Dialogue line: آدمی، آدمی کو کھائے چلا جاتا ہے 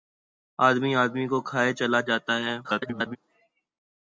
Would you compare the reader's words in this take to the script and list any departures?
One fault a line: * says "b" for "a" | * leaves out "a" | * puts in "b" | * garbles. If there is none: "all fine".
* garbles